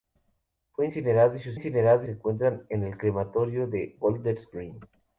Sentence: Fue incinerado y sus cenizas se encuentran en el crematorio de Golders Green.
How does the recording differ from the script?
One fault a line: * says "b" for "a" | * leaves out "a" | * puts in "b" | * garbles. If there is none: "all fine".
* says "incinerado" for "cenizas"